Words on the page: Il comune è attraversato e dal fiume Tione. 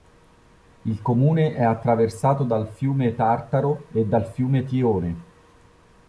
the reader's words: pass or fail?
fail